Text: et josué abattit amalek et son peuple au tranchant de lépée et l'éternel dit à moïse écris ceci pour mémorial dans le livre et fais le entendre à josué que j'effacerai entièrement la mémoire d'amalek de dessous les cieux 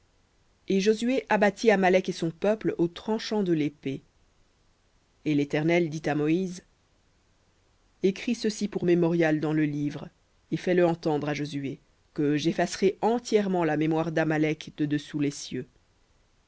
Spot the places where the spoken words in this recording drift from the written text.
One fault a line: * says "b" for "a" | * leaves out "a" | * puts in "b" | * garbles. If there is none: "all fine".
all fine